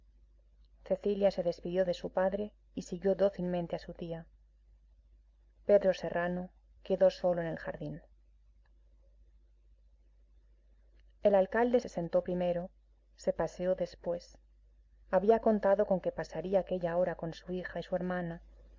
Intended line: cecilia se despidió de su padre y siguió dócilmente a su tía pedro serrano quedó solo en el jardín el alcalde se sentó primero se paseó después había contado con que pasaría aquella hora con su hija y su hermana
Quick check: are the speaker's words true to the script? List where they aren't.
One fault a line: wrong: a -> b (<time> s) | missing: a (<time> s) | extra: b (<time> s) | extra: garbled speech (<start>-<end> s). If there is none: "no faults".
no faults